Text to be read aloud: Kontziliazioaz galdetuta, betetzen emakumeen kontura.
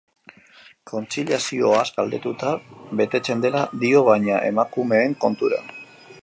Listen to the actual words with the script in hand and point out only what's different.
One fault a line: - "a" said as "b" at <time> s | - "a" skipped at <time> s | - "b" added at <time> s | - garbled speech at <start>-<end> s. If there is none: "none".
- "dela dio baina" added at 3.5 s